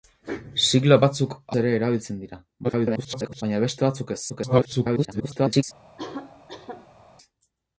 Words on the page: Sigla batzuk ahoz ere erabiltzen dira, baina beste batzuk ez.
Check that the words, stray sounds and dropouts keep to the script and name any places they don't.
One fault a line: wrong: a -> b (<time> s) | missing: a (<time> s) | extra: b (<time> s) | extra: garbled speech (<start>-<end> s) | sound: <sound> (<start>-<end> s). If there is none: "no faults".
missing: ahoz (1.3 s)
extra: garbled speech (2.6-3.4 s)
extra: garbled speech (4.3-5.6 s)
sound: cough (6.0-7.0 s)